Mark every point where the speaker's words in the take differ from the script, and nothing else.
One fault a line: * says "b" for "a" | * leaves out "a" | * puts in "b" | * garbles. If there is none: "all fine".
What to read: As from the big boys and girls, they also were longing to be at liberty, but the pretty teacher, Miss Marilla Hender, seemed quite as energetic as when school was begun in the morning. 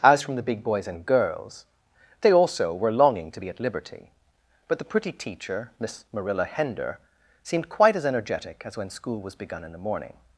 all fine